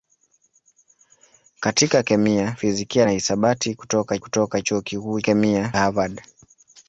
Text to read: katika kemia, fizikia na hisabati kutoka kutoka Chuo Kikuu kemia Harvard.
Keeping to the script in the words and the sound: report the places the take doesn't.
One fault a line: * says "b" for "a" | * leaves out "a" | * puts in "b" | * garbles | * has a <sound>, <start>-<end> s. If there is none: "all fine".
all fine